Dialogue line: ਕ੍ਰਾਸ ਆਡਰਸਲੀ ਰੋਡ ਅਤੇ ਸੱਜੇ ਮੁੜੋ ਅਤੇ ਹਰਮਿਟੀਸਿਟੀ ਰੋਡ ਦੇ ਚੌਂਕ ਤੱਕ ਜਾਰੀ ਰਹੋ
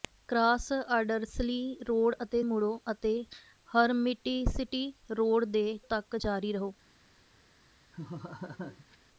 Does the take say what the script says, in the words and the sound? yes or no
no